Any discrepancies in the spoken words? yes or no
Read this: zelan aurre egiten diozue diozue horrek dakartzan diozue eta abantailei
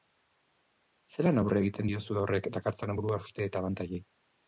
yes